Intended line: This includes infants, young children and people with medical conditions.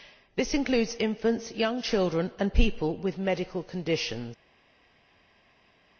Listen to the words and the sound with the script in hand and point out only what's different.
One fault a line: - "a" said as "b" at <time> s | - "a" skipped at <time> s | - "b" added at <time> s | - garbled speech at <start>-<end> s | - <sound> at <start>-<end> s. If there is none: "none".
none